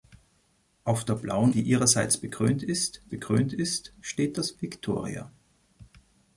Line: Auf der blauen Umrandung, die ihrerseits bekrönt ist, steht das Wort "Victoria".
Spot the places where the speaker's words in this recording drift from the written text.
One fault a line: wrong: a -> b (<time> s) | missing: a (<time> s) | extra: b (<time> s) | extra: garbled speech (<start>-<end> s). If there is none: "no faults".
missing: Umrandung (1.5 s)
extra: bekrönt ist (3.1 s)
missing: Wort (4.6 s)